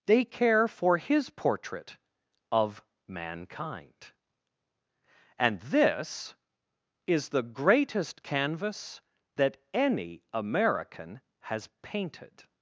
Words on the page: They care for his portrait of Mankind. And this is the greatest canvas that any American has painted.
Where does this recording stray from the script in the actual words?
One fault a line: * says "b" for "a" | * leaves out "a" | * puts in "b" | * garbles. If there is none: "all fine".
all fine